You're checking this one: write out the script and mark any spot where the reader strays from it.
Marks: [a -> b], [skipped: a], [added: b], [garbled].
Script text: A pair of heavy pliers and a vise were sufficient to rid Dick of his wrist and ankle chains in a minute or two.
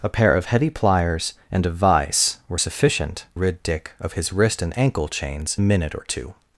A pair of heavy pliers and a vise were sufficient [skipped: to] rid Dick of his wrist and ankle chains [skipped: in] a minute or two.